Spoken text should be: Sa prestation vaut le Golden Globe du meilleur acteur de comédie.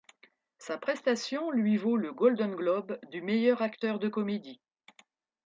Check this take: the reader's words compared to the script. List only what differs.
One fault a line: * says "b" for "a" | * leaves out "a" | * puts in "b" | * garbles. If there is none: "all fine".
* puts in "lui"